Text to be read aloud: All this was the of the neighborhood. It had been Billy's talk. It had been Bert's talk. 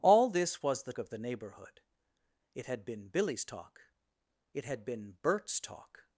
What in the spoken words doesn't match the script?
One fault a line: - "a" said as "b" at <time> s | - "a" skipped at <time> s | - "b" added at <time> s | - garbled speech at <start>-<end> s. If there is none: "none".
none